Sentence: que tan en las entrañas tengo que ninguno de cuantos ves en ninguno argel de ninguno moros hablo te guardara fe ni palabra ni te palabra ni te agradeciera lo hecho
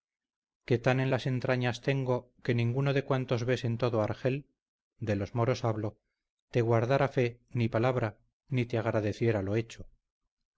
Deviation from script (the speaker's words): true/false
true